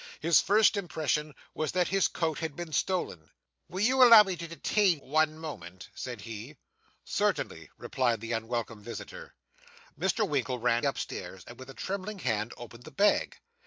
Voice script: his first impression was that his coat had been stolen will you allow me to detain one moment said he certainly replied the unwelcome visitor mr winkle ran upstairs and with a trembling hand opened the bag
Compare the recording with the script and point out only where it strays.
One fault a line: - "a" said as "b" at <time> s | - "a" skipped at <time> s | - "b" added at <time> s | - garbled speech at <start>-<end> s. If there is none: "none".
none